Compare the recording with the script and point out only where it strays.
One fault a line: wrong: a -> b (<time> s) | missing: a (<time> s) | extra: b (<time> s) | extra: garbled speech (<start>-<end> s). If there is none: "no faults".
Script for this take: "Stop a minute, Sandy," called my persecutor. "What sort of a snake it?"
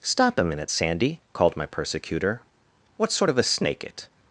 no faults